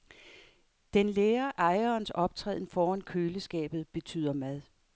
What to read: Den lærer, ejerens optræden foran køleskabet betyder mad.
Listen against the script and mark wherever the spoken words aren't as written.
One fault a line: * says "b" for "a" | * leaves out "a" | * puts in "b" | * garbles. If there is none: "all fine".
all fine